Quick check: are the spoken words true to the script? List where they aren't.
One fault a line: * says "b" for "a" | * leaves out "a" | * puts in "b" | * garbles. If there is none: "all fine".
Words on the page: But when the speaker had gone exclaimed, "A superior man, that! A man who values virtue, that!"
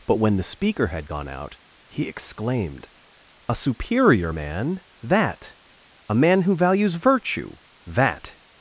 * puts in "out he"